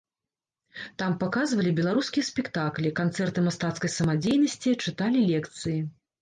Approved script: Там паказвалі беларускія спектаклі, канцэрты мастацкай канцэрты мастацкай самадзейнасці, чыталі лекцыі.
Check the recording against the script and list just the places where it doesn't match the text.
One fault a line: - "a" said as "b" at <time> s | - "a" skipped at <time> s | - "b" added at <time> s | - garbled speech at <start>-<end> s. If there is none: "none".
- "канцэрты мастацкай" skipped at 3.9 s